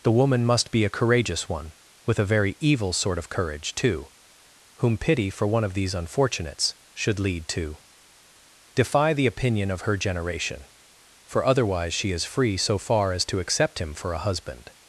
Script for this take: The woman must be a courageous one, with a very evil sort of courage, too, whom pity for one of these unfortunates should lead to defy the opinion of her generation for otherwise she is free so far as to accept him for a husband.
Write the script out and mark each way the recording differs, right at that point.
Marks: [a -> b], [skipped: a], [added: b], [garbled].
The woman must be a courageous one, with a very evil sort of courage, too, whom pity for one of these unfortunates should lead to defy the opinion of her generation for otherwise she is free so far as to accept him for a husband.